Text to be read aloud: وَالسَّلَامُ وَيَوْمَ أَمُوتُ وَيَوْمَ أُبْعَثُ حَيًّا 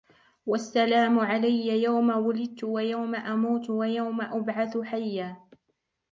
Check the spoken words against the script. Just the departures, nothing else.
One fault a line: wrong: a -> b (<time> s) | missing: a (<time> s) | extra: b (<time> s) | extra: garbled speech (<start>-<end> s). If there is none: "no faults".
extra: عَلَيَّ يَوْمَ وُلِدْتُ (1.2 s)